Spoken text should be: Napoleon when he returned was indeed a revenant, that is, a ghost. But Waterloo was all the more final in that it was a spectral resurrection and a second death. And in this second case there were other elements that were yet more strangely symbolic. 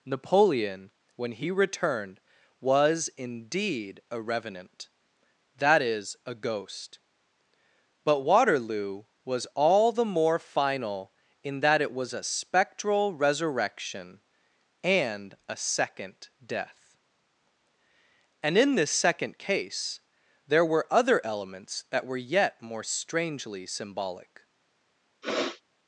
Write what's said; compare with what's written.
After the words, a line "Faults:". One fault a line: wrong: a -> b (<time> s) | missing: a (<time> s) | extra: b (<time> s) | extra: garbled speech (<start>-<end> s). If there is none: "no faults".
Napoleon when he returned was indeed a revenant, that is, a ghost. But Waterloo was all the more final in that it was a spectral resurrection and a second death. And in this second case there were other elements that were yet more strangely symbolic.
Faults:
no faults